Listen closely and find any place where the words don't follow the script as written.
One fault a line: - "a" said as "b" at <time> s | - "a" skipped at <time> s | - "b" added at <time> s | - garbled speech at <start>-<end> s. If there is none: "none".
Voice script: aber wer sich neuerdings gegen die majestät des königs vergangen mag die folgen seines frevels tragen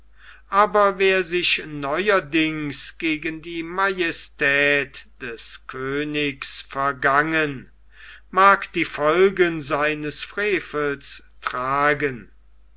none